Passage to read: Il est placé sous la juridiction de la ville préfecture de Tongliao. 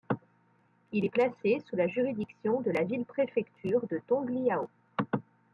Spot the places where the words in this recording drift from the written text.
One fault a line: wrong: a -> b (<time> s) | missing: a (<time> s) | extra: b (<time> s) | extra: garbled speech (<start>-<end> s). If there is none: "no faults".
no faults